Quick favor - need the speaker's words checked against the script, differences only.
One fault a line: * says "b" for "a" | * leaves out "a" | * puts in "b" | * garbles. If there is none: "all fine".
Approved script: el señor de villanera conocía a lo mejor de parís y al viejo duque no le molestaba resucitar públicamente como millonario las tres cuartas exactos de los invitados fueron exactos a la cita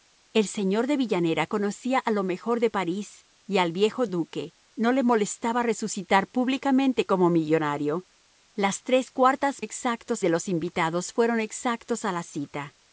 all fine